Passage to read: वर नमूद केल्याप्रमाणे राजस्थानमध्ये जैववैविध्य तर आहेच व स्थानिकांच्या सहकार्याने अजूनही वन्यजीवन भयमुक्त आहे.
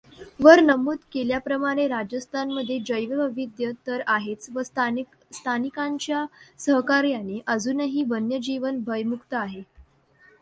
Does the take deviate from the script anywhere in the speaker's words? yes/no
no